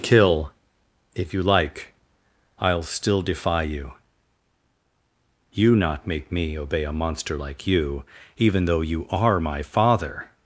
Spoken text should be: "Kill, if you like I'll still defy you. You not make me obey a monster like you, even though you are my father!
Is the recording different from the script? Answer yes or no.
no